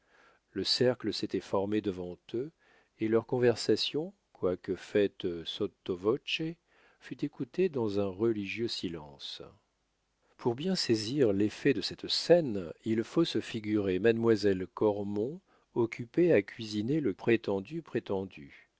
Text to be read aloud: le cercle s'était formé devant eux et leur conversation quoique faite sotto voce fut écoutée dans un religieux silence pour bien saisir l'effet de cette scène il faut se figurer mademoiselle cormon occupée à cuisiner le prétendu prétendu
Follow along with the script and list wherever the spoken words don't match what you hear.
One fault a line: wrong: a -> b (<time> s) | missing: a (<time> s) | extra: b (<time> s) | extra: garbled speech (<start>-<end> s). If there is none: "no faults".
no faults